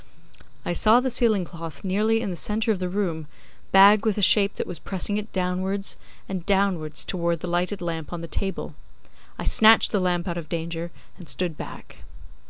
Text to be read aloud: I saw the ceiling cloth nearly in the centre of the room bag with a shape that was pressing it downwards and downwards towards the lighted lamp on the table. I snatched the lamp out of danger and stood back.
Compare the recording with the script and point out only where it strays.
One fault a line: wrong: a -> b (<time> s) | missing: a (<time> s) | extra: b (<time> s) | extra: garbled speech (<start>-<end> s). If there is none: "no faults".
no faults